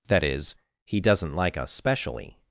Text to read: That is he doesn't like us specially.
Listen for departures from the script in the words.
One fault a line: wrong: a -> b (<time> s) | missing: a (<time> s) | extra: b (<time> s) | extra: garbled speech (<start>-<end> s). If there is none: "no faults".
no faults